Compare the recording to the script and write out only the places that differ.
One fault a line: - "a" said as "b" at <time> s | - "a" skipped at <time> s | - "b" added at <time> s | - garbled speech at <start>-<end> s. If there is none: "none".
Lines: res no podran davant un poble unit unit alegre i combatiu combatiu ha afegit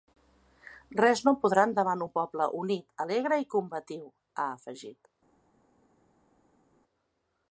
- "unit" skipped at 2.9 s
- "combatiu" skipped at 4.1 s